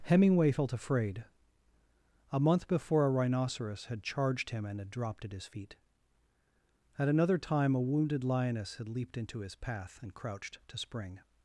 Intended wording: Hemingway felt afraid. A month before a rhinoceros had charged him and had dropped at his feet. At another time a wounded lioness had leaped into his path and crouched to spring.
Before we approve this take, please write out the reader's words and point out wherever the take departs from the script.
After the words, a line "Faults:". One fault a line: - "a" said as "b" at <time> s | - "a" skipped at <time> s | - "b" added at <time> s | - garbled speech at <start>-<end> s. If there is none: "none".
Hemingway felt afraid. A month before a rhinoceros had charged him and had dropped at his feet. At another time a wounded lioness had leaped into his path and crouched to spring.
Faults:
none